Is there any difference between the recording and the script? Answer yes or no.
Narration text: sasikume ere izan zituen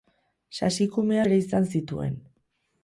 no